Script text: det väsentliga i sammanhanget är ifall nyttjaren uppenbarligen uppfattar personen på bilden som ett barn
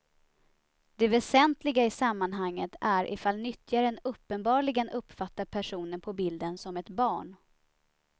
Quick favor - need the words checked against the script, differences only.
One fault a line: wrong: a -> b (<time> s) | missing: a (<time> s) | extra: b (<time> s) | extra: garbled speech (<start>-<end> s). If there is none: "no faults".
no faults